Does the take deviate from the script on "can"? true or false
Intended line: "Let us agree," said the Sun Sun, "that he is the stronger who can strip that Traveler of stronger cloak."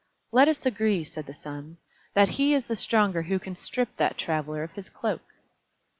false